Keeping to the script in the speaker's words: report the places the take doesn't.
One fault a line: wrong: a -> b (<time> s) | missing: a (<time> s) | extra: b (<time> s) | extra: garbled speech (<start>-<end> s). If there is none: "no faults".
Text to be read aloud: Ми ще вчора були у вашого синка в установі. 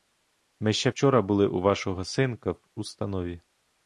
no faults